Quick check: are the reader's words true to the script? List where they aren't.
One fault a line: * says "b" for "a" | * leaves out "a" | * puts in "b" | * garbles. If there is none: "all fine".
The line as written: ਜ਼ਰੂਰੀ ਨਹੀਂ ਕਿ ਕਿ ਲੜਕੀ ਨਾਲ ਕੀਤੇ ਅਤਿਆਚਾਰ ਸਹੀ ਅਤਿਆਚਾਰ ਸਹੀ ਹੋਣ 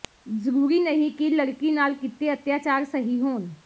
* leaves out "ਕਿ"
* leaves out "ਅਤਿਆਚਾਰ ਸਹੀ"